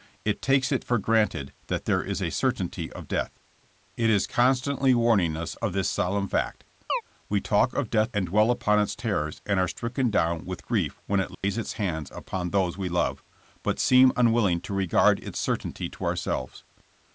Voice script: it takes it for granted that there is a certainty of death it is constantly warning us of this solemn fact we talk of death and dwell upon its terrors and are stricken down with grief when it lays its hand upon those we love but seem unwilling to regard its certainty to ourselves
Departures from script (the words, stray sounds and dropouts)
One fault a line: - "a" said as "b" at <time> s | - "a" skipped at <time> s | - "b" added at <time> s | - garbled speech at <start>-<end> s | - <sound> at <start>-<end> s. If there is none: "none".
- chirp at 6.9-7.0 s
- dropout at 11.3-11.4 s